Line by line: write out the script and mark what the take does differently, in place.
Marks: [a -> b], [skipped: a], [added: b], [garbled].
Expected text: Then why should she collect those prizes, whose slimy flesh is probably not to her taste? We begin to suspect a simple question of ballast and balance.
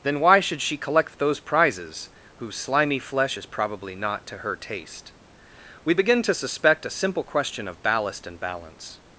Then why should she collect those prizes, whose slimy flesh is probably not to her taste? We begin to suspect a simple question of ballast and balance.